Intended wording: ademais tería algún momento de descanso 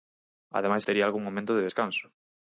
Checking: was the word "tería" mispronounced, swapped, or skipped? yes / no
no